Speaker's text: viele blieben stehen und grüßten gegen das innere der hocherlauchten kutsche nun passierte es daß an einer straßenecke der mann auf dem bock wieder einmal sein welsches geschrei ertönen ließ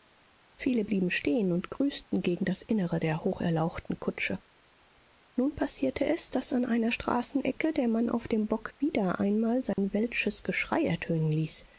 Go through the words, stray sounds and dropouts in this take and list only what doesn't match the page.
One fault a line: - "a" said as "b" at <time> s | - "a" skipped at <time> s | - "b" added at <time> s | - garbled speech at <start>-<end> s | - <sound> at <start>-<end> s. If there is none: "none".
- dropout at 9.7-9.8 s